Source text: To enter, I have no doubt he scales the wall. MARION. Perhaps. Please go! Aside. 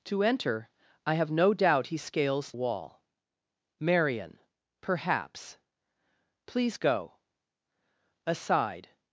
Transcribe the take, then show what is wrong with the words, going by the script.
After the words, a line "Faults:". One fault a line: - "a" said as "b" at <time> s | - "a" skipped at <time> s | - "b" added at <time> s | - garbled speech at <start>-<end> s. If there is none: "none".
To enter, I have no doubt he scales wall. MARION. Perhaps. Please go! Aside.
Faults:
- "the" skipped at 2.5 s